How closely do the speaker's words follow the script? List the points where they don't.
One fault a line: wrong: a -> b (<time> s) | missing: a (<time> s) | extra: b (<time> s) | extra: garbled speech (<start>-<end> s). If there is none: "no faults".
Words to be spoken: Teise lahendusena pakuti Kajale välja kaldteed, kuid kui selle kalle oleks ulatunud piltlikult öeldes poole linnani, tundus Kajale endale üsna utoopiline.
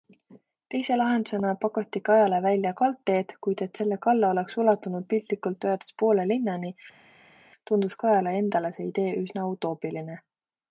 wrong: kui -> et (3.7 s)
extra: see idee (8.8 s)